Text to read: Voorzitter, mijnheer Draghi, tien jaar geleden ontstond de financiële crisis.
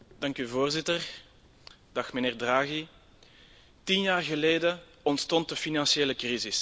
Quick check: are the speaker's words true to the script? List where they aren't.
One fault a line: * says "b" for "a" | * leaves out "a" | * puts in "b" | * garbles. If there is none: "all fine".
all fine